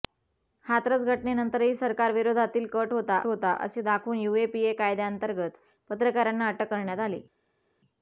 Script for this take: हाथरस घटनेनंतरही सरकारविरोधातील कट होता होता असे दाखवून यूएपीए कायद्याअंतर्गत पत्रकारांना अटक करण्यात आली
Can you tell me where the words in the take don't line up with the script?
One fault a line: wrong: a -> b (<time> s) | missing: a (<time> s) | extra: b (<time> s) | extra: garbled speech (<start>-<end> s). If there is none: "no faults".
no faults